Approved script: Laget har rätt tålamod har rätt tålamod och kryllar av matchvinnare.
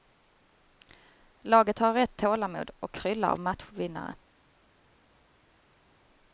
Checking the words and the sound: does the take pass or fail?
fail